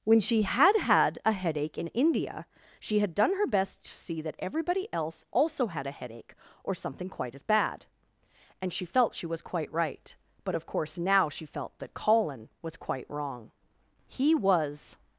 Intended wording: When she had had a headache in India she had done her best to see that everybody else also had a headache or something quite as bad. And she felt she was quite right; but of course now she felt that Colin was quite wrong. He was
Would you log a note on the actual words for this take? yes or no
no